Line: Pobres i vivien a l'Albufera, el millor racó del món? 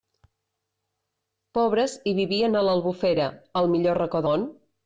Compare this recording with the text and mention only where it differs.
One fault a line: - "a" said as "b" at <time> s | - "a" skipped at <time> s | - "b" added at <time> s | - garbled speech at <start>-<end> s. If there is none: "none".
- "del" skipped at 4.3 s